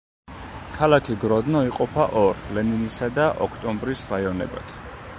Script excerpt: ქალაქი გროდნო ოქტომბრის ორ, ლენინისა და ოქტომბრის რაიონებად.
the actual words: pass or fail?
fail